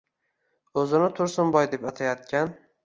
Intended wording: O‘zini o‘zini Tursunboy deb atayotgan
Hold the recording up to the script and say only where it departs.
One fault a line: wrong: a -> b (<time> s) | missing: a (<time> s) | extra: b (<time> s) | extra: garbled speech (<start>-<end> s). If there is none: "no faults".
missing: o‘zini (1.1 s)